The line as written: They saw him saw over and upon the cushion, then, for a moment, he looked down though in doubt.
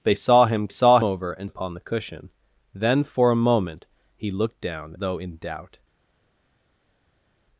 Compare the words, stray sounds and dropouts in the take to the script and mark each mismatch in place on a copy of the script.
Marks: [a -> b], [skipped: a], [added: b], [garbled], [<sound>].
They saw him saw over and upon the cushion, then, for a moment, he looked down though in doubt.